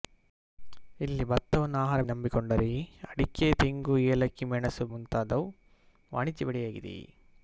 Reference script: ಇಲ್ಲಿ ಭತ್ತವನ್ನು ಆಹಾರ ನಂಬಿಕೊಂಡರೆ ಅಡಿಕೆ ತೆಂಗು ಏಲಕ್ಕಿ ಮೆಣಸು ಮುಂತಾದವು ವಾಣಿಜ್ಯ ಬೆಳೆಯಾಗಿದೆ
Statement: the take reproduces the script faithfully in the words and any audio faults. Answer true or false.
true